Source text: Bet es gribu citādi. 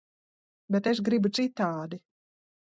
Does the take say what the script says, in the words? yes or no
yes